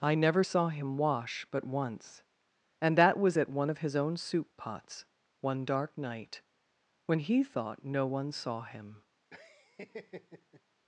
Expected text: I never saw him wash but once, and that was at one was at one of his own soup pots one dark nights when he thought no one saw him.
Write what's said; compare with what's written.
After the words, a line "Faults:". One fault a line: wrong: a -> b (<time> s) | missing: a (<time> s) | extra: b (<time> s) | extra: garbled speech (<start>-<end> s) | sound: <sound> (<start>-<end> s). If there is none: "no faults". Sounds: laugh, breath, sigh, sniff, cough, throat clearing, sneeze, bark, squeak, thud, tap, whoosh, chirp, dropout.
I never saw him wash but once, and that was at one of his own soup pots one dark night when he thought no one saw him.
Faults:
missing: was at one (3.7 s)
wrong: nights -> night (6.0 s)
sound: laugh (9.3-10.6 s)